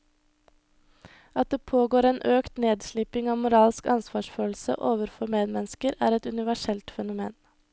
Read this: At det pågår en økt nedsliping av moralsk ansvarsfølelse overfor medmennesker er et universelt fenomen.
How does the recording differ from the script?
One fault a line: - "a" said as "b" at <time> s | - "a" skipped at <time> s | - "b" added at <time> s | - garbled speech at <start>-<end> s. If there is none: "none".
none